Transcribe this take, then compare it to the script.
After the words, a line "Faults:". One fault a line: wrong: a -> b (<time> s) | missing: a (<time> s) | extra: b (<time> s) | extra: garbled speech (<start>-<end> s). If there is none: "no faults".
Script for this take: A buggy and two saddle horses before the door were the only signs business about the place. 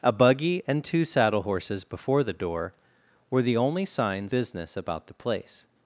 A buggy and two saddle horses before the door were the only signs business about the place.
Faults:
no faults